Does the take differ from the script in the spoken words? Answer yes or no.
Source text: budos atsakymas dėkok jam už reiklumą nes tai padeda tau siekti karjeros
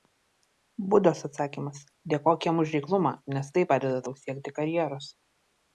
no